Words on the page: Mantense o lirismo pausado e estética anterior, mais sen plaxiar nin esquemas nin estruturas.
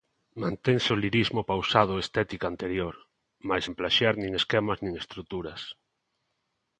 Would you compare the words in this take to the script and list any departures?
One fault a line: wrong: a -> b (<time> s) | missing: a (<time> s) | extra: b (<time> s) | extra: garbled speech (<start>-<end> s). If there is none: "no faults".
no faults